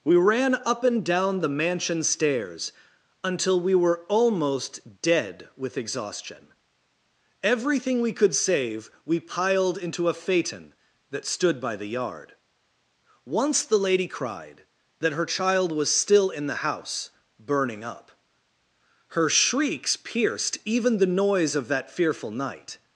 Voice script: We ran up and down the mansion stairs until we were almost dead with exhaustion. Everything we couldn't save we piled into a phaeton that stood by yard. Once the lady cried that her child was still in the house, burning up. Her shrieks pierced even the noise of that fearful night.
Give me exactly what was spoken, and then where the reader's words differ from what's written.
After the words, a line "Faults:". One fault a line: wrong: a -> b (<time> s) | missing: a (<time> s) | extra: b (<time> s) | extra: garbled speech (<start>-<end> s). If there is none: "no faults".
We ran up and down the mansion stairs until we were almost dead with exhaustion. Everything we could save we piled into a phaeton that stood by the yard. Once the lady cried that her child was still in the house, burning up. Her shrieks pierced even the noise of that fearful night.
Faults:
wrong: couldn't -> could (8.1 s)
extra: the (11.8 s)